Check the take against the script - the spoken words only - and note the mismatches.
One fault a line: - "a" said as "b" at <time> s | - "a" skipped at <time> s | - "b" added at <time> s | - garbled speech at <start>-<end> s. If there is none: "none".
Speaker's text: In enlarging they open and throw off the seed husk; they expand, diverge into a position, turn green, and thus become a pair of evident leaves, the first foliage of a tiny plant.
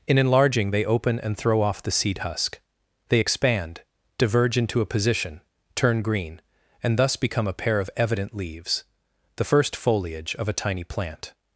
none